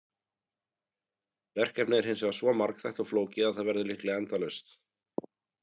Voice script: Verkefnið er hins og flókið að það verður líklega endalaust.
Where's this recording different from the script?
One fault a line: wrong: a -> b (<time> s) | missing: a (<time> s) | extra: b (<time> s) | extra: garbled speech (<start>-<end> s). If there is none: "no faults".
extra: vegar svo margþætt (2.2 s)